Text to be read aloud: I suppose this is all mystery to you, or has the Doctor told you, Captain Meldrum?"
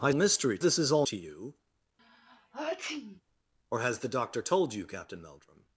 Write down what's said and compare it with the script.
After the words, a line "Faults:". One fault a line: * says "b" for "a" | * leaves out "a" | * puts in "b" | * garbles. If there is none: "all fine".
I mystery this is all to you, or has the Doctor told you, Captain Meldrum?"
Faults:
* says "mystery" for "suppose"
* leaves out "mystery"